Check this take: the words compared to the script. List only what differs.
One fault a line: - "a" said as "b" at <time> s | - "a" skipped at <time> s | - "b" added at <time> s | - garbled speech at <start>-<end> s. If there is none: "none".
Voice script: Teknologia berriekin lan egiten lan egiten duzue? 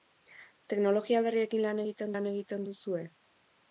none